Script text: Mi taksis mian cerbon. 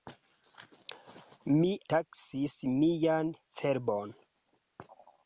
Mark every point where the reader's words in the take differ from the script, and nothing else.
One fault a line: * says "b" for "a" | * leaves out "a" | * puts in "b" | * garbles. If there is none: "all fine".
all fine